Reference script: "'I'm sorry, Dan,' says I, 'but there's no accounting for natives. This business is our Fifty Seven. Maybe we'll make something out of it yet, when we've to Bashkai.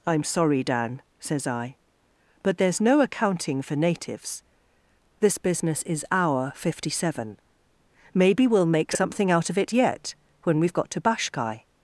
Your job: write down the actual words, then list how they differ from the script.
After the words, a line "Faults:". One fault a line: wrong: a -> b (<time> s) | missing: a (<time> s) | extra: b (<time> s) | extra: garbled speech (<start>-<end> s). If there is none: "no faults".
"'I'm sorry, Dan,' says I, 'but there's no accounting for natives. This business is our Fifty Seven. Maybe we'll make something out of it yet, when we've got to Bashkai.
Faults:
extra: got (10.7 s)